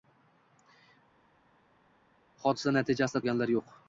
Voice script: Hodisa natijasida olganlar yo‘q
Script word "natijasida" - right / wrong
right